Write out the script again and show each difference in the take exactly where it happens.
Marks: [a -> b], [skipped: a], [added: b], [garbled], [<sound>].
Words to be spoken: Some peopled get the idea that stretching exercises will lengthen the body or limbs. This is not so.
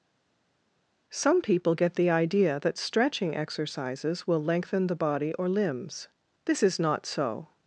Some [peopled -> people] get the idea that stretching exercises will lengthen the body or limbs. This is not so.